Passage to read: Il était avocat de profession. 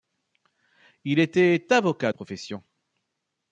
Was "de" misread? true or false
true